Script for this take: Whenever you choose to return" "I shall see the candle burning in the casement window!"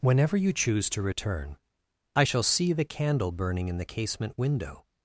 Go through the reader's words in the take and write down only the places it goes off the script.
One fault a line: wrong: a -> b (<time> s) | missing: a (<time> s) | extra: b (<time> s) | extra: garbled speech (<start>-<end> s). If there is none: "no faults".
no faults